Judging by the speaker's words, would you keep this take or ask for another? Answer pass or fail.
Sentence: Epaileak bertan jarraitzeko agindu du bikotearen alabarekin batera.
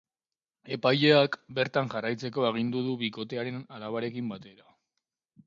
pass